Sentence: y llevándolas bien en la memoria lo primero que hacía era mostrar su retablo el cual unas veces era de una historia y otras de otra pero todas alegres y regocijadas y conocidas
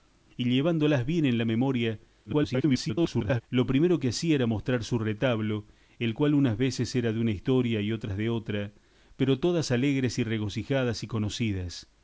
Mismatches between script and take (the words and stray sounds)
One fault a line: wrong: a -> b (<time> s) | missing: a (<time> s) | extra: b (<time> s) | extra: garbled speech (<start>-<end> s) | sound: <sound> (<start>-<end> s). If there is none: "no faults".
extra: garbled speech (2.2-3.4 s)